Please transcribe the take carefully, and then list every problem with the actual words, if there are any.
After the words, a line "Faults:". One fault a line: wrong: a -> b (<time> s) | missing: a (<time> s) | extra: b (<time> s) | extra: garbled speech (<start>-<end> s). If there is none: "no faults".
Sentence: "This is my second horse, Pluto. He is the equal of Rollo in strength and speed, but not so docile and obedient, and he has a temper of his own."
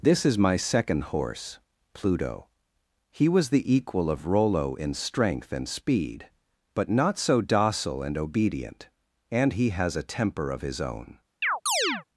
"This is my second horse, Pluto. He was the equal of Rollo in strength and speed, but not so docile and obedient, and he has a temper of his own."
Faults:
wrong: is -> was (3.3 s)